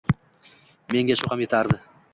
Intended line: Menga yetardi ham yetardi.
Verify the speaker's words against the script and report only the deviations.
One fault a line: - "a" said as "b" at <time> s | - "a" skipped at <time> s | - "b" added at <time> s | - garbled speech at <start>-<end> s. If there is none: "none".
- "yetardi" said as "shu" at 1.2 s